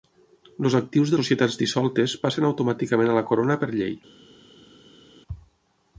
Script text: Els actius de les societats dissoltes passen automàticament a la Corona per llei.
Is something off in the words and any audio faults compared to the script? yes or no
yes